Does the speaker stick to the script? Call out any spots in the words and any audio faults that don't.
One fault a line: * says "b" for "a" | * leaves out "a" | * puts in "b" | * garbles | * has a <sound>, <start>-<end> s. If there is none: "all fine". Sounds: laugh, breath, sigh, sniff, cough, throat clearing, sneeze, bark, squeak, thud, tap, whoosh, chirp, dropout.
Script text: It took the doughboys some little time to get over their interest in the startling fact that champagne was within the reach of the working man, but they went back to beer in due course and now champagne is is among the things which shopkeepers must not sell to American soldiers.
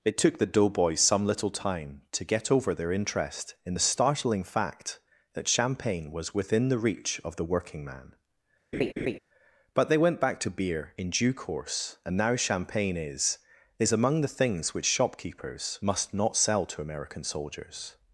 * has a laugh, 8.7-9.2 s